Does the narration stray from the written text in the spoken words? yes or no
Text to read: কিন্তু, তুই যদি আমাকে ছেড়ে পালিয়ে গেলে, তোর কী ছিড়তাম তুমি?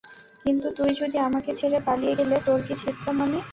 yes